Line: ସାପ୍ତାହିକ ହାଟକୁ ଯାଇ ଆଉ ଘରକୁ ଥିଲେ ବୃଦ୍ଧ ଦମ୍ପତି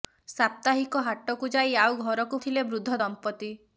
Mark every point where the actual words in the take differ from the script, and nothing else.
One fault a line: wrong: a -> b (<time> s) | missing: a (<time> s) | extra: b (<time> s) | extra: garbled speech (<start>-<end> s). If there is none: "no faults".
no faults